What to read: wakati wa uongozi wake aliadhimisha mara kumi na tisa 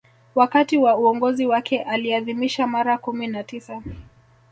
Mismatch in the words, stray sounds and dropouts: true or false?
false